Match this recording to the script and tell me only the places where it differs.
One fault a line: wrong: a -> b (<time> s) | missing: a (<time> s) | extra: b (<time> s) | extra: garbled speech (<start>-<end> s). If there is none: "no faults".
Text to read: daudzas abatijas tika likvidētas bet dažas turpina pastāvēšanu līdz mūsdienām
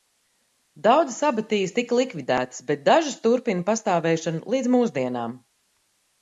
no faults